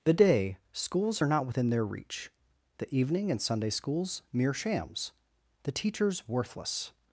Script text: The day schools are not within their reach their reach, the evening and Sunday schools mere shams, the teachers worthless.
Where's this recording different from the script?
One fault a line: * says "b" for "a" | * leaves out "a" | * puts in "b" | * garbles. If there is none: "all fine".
* leaves out "their reach"